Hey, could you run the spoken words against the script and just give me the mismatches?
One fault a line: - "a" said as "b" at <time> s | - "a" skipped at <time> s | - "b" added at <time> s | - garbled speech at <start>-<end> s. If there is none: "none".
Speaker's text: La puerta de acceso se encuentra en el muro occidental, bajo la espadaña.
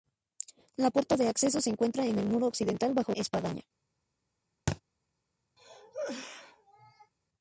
- "la" skipped at 3.1 s